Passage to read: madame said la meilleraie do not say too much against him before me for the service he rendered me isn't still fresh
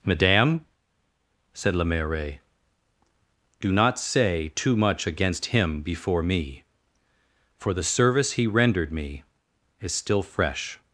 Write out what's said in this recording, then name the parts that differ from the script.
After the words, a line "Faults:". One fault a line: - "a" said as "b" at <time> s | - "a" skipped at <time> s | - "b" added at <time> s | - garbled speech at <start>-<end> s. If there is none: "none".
madame said la meilleraie do not say too much against him before me for the service he rendered me is still fresh
Faults:
- "isn't" said as "is" at 9.8 s